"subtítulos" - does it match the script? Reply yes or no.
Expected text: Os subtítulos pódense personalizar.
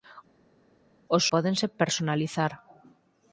no